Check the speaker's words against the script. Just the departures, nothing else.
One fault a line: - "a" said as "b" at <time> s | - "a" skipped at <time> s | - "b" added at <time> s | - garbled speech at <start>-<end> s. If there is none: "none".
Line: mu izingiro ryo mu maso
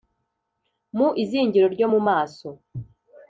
none